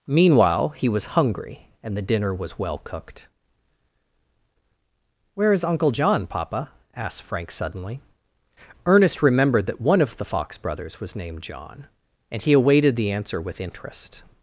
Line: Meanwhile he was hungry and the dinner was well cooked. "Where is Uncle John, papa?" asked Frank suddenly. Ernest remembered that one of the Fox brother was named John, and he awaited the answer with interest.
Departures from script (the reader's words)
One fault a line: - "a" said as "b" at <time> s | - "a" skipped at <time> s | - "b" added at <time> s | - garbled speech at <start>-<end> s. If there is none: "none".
- "brother" said as "brothers" at 10.6 s